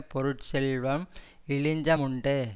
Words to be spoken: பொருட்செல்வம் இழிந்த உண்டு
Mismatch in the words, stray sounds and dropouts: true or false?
false